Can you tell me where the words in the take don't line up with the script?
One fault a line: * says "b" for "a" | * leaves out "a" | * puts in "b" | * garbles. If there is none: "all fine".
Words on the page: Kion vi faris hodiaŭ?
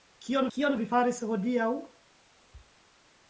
* puts in "kion"